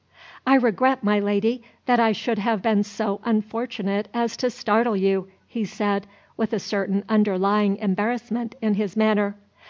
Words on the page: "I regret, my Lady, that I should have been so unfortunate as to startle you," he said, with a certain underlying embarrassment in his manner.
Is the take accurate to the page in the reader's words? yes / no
yes